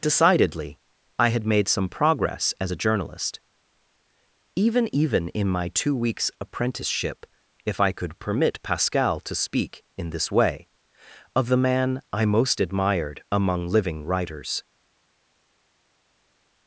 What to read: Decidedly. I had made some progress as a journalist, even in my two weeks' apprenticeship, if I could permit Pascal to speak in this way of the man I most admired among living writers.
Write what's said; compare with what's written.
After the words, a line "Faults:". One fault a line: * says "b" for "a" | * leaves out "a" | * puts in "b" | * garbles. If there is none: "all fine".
Decidedly. I had made some progress as a journalist, even even in my two weeks' apprenticeship, if I could permit Pascal to speak in this way of the man I most admired among living writers.
Faults:
* puts in "even"